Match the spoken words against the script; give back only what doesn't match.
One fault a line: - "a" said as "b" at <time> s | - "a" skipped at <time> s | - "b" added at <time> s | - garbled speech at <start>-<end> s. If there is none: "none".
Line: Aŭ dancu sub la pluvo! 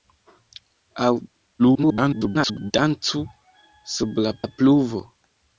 - garbled speech at 1.6-2.7 s
- "la" added at 4.4 s